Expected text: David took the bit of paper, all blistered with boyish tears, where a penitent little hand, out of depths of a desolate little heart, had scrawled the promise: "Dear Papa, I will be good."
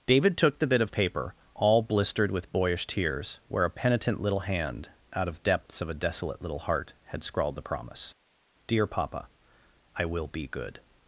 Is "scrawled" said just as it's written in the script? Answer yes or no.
yes